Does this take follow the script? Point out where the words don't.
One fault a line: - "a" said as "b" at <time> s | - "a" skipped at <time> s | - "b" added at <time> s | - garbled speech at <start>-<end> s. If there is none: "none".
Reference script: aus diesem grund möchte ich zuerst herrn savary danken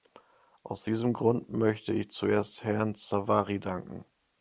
none